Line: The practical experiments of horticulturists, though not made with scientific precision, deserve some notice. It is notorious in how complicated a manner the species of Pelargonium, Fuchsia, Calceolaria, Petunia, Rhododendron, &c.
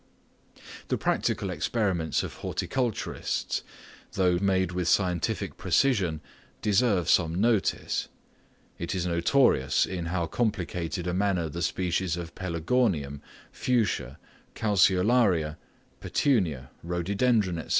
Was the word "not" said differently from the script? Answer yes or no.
yes